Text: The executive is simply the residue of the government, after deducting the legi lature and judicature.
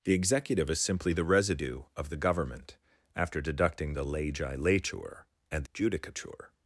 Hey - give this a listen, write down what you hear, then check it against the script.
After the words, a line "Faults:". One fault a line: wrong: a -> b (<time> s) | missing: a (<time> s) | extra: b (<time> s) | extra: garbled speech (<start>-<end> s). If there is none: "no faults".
The executive is simply the residue of the government, after deducting the legi lature and judicature.
Faults:
no faults